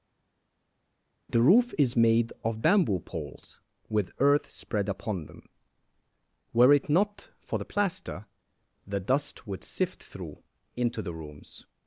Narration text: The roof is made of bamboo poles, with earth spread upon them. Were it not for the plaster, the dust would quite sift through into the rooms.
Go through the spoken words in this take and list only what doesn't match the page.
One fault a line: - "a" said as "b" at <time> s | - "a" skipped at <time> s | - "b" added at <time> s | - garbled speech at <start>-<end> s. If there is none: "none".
- "quite" skipped at 9.6 s